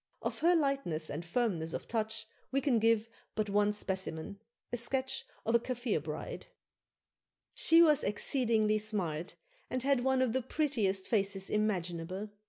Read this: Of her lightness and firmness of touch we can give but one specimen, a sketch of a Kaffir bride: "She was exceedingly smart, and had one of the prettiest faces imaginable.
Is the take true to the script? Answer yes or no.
yes